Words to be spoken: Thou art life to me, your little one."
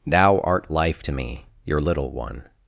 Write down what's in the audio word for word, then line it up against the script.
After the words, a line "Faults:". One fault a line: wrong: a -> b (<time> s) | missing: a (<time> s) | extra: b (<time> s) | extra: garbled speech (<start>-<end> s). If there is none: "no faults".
Thou art life to me, your little one."
Faults:
no faults